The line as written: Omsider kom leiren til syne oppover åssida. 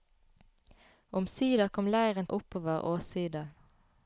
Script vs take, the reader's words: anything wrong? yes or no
yes